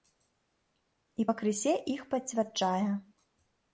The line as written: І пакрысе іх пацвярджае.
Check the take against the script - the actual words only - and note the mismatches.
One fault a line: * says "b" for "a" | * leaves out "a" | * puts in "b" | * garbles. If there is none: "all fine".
all fine